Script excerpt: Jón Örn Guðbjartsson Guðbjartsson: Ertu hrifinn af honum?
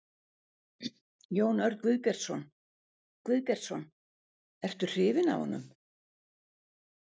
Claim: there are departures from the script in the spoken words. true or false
false